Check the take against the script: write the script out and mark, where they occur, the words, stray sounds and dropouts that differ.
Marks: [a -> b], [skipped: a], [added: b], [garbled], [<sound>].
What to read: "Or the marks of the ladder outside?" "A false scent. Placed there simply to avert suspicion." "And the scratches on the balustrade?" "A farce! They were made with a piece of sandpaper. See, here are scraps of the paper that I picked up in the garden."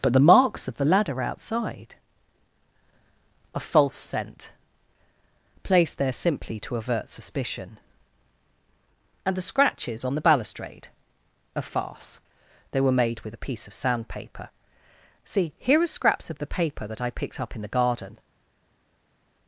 ["Or -> But] the marks of the ladder outside?" "A false scent. Placed there simply to avert suspicion." "And the scratches on the balustrade?" "A farce! They were made with a piece of sandpaper. See, here are scraps of the paper that I picked up in the garden."